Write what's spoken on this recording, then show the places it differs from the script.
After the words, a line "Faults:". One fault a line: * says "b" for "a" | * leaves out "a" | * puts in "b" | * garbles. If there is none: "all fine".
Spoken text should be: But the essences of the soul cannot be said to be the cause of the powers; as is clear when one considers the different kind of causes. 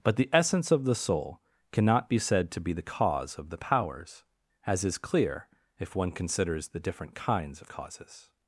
But the essence of the soul cannot be said to be the cause of the powers; as is clear if one considers the different kinds of causes.
Faults:
* says "essence" for "essences"
* says "if" for "when"
* says "kinds" for "kind"